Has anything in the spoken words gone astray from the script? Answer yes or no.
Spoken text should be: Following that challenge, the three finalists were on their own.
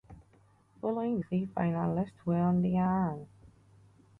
yes